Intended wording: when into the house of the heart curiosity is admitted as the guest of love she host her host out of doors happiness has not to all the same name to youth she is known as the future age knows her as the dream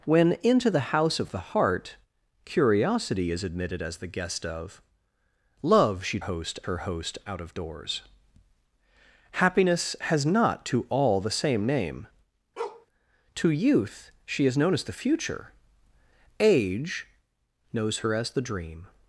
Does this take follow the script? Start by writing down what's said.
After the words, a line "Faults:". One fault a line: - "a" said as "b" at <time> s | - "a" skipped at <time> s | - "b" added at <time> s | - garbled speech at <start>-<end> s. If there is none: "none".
when into the house of the heart curiosity is admitted as the guest of love she host her host out of doors happiness has not to all the same name to youth she is known as the future age knows her as the dream
Faults:
none